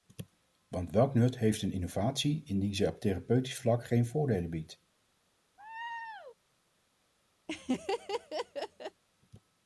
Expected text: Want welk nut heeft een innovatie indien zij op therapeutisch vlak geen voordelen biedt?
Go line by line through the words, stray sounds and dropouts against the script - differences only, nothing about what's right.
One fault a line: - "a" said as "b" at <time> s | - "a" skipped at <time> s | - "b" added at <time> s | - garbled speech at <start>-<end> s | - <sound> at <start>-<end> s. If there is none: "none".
- laugh at 5.6-6.4 s
- laugh at 7.5-9.0 s